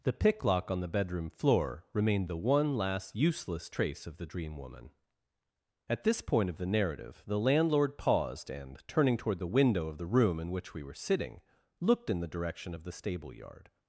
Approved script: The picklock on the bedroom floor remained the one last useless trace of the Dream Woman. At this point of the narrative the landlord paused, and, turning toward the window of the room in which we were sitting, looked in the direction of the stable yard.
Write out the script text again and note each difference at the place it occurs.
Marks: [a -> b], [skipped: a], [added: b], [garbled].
The picklock on the bedroom floor remained the one last useless trace of the Dream Woman. At this point of the narrative the landlord paused, and, turning toward the window of the room in which we were sitting, looked in the direction of the stable yard.